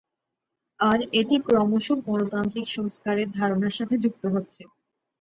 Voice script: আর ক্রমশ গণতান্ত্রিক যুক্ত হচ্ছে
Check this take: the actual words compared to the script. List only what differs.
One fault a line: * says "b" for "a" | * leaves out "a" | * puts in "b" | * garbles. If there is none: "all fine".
* puts in "এটি"
* puts in "সংস্কারের ধারণার সাথে"